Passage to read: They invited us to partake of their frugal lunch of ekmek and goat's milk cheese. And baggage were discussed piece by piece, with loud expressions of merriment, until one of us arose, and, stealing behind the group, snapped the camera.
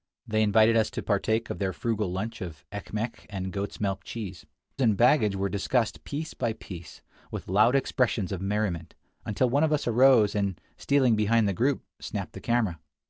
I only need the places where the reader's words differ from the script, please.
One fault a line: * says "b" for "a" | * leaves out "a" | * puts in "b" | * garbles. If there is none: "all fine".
all fine